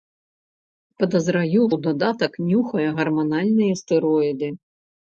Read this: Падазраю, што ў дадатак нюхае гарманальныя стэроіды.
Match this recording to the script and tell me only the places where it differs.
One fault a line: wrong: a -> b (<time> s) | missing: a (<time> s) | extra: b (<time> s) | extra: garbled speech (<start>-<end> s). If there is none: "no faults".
missing: што (1.6 s)